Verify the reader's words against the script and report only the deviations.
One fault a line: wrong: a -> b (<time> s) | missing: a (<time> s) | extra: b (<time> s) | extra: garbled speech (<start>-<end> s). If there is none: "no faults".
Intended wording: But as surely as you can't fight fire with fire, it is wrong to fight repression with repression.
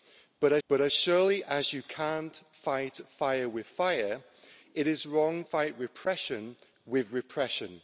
extra: but as (0.7 s)
missing: to (5.4 s)